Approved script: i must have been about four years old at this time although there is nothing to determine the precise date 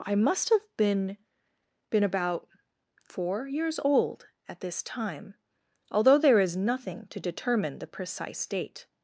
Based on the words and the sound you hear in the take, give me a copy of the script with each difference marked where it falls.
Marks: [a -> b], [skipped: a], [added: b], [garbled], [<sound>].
i must have been [added: been] about four years old at this time although there is nothing to determine the precise date